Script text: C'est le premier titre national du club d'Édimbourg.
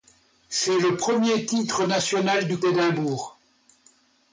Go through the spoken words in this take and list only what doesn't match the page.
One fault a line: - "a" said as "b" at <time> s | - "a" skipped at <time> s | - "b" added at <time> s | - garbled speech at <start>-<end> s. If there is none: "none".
- "club" skipped at 2.6 s